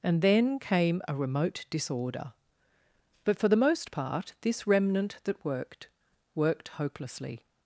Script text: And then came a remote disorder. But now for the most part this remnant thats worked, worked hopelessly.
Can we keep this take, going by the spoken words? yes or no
no